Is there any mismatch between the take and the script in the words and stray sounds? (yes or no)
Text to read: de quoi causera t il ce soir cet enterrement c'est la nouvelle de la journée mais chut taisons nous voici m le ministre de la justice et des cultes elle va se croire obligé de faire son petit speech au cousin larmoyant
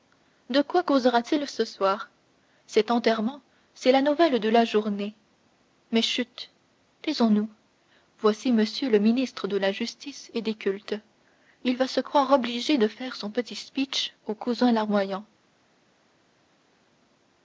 yes